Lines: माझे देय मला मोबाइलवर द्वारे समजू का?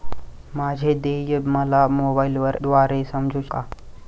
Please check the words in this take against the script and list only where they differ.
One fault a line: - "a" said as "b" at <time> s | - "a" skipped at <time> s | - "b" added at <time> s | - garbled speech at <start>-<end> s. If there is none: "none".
none